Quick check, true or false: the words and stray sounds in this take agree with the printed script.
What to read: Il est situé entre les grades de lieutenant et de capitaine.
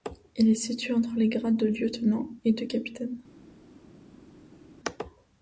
true